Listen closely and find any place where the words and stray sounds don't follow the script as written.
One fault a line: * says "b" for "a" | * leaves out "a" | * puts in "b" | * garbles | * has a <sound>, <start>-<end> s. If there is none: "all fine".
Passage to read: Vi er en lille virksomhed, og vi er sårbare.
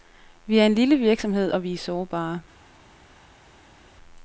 all fine